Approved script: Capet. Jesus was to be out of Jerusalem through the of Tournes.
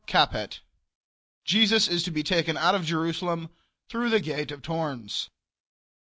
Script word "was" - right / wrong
wrong